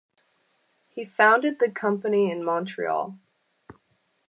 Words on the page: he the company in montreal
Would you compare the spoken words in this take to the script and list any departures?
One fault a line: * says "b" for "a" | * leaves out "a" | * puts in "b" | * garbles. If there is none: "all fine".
* puts in "founded"